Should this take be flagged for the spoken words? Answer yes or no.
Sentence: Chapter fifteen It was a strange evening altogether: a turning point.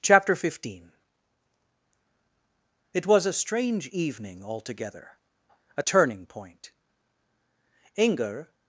yes